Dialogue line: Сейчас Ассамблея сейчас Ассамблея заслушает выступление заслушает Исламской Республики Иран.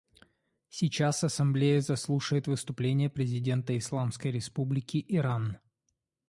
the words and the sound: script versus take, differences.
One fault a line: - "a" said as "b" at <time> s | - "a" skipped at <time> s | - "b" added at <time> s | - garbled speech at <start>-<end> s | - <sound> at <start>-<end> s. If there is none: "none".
- "сейчас Ассамблея" skipped at 1.8 s
- "заслушает" said as "президента" at 3.1 s